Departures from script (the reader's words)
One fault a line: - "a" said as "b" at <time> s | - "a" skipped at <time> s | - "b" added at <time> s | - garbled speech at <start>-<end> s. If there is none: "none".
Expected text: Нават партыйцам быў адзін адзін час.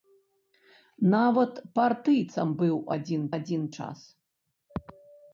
none